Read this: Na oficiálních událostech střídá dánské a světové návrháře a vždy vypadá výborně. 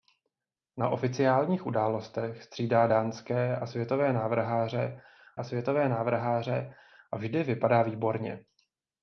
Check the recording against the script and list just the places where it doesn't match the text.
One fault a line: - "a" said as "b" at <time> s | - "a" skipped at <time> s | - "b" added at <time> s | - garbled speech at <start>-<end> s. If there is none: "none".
- "světové návrháře a" added at 5.4 s